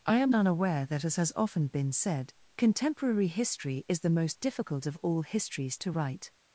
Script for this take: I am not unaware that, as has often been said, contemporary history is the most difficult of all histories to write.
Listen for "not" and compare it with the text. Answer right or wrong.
wrong